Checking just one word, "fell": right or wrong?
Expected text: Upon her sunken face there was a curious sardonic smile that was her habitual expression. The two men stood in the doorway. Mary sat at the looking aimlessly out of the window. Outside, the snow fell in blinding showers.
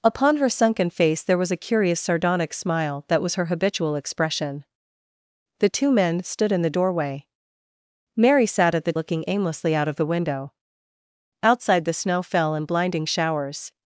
right